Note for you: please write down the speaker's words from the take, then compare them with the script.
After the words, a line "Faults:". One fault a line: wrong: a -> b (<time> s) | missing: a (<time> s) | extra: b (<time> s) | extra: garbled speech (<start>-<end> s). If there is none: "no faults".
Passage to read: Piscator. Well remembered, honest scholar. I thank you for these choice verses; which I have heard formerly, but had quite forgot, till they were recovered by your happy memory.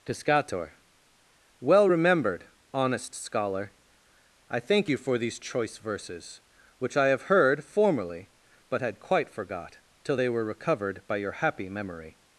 Piscator. Well remembered, honest scholar. I thank you for these choice verses; which I have heard formerly, but had quite forgot, till they were recovered by your happy memory.
Faults:
no faults